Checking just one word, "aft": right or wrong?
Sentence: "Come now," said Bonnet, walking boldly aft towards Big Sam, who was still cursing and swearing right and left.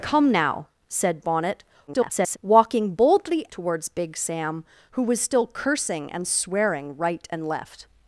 wrong